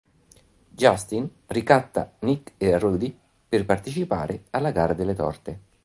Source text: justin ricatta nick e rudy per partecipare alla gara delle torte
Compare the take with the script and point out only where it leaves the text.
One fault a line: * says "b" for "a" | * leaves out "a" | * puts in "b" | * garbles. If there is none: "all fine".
all fine